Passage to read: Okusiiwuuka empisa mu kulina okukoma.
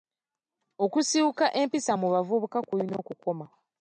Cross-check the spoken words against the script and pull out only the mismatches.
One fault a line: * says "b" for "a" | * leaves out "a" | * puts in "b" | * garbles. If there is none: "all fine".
* puts in "bavubuka"